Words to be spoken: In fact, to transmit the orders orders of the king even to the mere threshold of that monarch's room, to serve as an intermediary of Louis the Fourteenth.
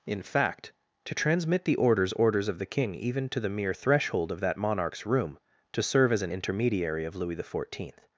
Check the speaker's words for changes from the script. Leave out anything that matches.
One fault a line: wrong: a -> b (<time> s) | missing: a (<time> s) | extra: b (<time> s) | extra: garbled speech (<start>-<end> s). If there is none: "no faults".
no faults